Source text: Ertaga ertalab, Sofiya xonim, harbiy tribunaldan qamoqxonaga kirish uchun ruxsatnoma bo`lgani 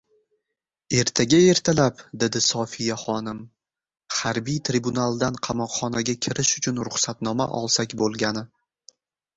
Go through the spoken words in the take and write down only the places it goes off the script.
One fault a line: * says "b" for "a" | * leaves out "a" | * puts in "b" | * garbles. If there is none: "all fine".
* puts in "dedi"
* puts in "olsak"